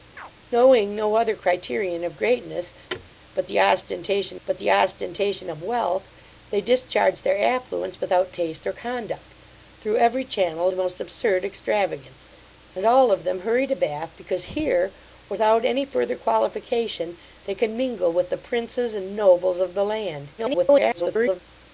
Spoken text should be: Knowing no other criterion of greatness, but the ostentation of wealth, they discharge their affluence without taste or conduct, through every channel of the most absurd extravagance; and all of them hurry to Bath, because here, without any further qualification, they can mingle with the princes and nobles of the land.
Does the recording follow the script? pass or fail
fail